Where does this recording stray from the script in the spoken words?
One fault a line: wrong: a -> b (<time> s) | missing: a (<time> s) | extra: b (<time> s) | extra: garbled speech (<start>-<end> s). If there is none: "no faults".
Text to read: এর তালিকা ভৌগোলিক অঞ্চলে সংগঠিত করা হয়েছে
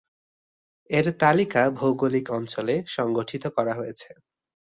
no faults